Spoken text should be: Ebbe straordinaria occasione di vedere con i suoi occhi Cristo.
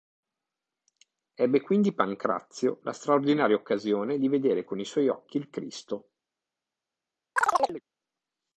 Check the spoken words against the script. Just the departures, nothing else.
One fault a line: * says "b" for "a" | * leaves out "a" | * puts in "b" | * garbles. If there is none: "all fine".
* puts in "quindi Pancrazio la"
* puts in "il"